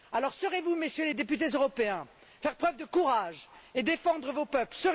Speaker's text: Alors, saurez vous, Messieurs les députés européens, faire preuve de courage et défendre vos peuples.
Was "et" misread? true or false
false